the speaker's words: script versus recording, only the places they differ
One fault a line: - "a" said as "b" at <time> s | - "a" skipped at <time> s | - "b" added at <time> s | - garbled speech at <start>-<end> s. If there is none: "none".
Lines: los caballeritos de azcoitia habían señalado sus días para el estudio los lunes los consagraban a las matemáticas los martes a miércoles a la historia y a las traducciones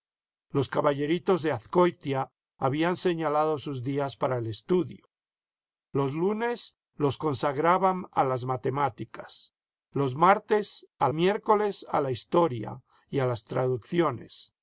none